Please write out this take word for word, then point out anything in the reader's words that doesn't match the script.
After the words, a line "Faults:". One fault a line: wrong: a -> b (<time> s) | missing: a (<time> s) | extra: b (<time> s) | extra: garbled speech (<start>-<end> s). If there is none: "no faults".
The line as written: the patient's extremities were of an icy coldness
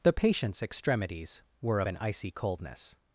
the patient's extremities were of an icy coldness
Faults:
no faults